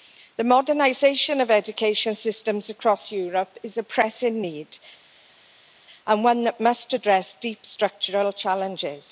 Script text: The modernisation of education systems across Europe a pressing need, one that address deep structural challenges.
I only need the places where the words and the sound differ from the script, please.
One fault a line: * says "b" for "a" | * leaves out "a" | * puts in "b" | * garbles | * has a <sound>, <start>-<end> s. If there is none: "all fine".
* puts in "is"
* puts in "and"
* puts in "must"